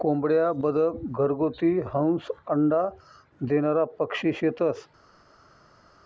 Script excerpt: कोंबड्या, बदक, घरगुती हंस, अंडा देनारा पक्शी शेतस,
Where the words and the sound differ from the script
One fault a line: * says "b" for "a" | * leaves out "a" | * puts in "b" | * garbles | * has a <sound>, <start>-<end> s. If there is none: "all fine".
all fine